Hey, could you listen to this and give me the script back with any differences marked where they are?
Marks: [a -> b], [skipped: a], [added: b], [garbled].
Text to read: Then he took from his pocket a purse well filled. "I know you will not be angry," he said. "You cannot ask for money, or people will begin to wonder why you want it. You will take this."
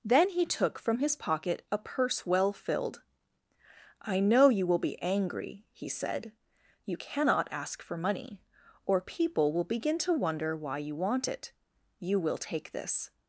Then he took from his pocket a purse well filled. "I know you will [skipped: not] be angry," he said. "You cannot ask for money, or people will begin to wonder why you want it. You will take this."